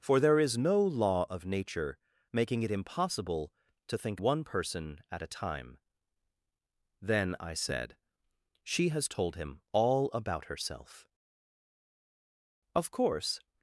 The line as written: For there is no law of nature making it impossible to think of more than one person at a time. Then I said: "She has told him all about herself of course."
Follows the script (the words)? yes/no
no